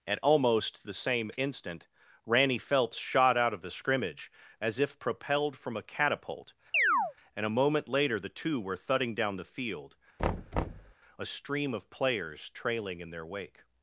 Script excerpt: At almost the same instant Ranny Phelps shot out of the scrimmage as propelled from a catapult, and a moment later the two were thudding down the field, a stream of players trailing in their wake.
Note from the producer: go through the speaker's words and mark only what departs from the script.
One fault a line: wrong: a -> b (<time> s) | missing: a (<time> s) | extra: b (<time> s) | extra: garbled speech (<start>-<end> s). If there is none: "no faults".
extra: if (4.8 s)